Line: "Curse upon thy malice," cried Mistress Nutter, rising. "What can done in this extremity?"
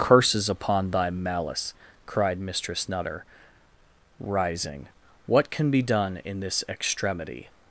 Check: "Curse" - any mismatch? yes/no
yes